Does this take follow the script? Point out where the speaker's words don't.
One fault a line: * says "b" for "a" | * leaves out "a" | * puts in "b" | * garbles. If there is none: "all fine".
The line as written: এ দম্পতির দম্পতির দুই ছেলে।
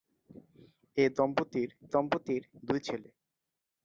all fine